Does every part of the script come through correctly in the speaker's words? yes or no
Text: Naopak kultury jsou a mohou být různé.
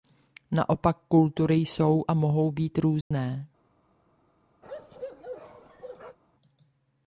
yes